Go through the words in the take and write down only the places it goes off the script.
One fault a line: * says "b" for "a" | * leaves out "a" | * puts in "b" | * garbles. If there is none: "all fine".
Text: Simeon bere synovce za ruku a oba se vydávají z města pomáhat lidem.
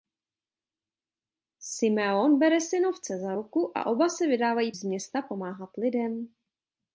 all fine